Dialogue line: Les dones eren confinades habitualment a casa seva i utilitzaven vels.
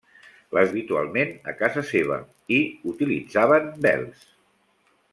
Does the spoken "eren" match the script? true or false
false